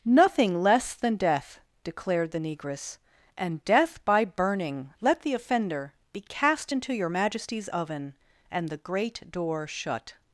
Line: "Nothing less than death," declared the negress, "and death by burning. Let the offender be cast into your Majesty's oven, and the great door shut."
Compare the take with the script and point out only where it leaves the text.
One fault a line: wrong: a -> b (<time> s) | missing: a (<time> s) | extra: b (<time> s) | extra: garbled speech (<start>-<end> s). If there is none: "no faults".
no faults